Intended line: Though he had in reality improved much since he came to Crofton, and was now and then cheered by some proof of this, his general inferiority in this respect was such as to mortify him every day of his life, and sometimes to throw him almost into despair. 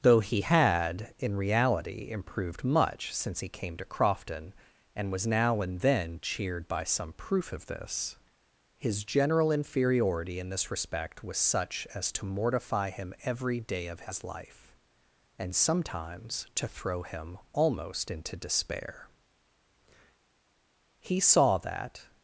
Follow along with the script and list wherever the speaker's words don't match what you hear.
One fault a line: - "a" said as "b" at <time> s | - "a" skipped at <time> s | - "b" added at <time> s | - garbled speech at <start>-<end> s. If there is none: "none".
- "He saw that" added at 21.0 s